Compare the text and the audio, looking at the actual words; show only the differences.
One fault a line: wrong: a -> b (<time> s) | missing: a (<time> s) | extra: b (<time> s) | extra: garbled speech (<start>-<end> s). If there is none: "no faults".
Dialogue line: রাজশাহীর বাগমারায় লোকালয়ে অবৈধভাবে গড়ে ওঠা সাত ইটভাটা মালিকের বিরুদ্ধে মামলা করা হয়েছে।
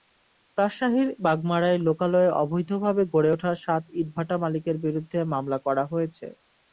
no faults